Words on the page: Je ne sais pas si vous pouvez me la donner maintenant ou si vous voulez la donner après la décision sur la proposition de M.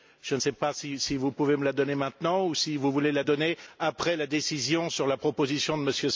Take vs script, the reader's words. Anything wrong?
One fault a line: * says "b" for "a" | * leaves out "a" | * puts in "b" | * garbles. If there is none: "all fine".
all fine